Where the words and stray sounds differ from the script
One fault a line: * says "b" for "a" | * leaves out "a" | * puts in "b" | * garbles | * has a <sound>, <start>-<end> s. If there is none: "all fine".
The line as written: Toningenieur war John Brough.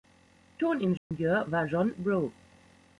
* has a dropout, 1.0-1.1 s